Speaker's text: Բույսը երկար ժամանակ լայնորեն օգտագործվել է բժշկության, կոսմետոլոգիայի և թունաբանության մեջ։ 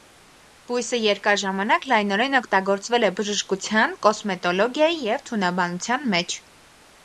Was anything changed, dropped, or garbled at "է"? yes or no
no